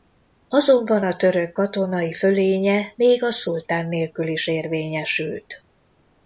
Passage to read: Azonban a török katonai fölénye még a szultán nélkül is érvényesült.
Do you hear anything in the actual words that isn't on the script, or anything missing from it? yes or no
no